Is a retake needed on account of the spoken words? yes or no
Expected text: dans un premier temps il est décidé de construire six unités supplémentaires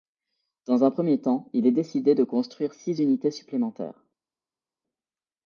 no